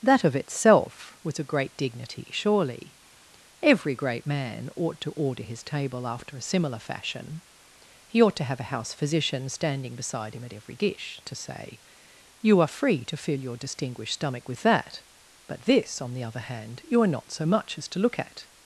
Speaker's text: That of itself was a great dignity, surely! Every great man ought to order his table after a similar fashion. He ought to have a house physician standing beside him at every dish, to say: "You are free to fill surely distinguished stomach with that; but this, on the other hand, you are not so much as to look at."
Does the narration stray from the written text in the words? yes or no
yes